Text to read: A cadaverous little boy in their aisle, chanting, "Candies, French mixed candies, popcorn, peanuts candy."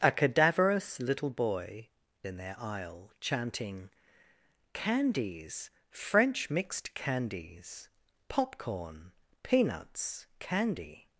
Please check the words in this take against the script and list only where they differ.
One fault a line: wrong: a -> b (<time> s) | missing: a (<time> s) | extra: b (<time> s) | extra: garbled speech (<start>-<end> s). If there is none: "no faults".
no faults